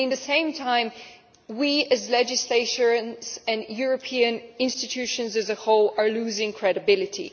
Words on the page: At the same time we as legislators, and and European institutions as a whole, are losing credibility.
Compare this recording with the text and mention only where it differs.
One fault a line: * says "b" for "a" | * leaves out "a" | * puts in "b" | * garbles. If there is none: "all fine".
* leaves out "and"